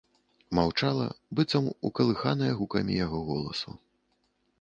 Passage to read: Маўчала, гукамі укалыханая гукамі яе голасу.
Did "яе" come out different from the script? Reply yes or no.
yes